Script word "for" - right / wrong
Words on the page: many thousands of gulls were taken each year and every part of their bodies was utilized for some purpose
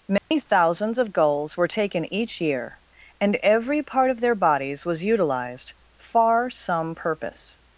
wrong